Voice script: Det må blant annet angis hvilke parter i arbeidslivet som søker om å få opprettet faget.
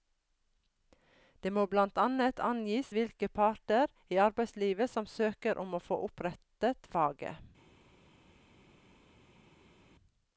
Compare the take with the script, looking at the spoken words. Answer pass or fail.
pass